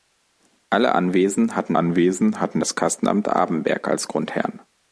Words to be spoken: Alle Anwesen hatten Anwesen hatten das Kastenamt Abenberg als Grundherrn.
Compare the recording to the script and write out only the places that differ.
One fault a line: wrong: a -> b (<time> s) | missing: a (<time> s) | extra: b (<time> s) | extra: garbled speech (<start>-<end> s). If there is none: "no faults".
no faults